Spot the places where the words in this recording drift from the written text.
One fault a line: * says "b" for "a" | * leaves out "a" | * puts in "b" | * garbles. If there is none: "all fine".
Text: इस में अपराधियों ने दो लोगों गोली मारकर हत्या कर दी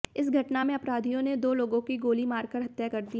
* puts in "घटना"
* puts in "की"